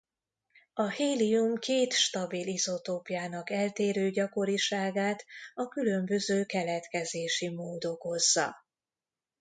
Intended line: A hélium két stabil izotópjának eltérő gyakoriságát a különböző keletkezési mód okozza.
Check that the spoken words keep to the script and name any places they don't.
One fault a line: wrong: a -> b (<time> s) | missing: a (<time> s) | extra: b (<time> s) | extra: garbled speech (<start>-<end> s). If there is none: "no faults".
no faults